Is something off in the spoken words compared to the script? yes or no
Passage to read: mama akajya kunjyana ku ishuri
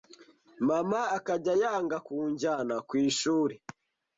yes